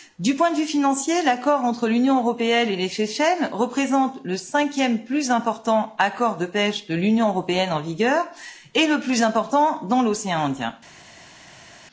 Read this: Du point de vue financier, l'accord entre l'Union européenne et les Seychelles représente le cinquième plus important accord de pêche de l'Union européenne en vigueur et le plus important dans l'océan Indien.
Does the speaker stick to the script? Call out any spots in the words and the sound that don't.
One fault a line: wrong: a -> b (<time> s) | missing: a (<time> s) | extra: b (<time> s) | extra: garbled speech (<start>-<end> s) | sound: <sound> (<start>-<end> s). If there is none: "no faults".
no faults